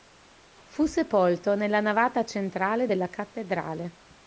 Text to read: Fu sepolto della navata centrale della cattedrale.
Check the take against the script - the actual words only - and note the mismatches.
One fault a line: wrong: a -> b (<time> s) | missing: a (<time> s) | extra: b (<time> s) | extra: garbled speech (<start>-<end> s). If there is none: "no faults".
wrong: della -> nella (1.5 s)